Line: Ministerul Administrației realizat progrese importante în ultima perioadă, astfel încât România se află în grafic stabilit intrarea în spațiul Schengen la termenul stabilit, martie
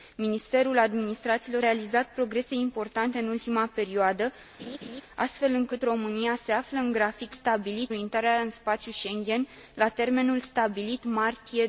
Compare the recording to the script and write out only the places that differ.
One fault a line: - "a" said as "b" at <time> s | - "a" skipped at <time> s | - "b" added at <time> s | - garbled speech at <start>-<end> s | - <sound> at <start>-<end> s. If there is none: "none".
- laugh at 4.6-5.0 s